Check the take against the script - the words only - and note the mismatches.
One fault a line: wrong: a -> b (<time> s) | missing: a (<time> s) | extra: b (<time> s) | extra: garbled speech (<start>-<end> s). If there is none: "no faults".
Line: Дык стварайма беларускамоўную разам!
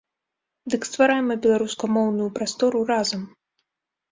extra: прастору (2.4 s)